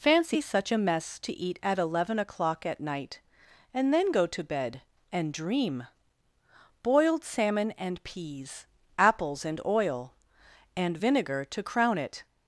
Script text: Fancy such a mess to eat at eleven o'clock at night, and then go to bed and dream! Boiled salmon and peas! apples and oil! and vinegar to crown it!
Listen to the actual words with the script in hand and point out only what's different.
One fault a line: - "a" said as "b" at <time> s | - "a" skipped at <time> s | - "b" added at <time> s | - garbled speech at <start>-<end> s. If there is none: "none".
none